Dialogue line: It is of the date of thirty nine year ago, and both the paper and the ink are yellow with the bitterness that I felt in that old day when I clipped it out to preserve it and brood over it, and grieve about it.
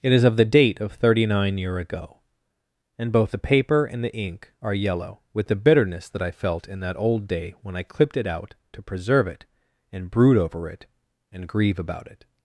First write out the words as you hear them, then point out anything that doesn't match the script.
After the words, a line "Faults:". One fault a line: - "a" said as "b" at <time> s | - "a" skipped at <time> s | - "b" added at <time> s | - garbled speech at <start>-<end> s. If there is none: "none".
It is of the date of thirty nine year ago, and both the paper and the ink are yellow with the bitterness that I felt in that old day when I clipped it out to preserve it and brood over it, and grieve about it.
Faults:
none